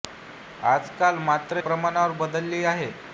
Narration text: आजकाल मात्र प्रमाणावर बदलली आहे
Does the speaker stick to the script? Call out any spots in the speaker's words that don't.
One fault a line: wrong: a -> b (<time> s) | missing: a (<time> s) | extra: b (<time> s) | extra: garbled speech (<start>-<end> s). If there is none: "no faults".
no faults